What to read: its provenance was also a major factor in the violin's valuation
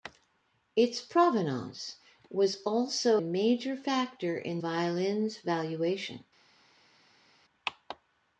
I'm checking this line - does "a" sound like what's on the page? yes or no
no